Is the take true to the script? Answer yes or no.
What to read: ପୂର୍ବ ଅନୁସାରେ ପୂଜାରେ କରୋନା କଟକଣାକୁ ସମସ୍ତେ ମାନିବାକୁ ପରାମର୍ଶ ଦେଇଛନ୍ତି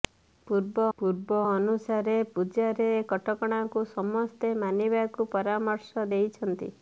no